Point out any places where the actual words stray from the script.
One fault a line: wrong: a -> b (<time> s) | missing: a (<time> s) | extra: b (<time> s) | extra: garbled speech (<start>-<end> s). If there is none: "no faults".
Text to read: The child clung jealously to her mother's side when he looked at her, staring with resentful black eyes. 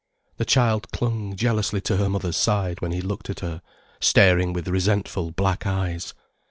no faults